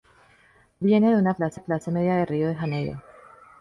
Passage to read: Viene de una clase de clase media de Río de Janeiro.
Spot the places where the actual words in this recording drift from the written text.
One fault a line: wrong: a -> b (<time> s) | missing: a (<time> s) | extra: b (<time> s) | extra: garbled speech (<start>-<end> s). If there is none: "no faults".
no faults